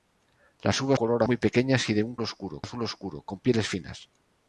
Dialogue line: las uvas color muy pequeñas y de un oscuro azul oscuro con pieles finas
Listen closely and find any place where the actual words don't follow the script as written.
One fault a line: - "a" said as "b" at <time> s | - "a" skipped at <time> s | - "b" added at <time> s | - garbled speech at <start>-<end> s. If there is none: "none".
none